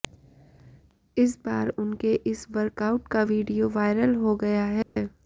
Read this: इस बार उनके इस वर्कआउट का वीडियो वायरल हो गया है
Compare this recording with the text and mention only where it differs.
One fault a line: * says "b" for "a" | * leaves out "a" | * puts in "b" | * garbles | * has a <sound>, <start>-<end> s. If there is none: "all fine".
* has a dropout, 4.8-5.0 s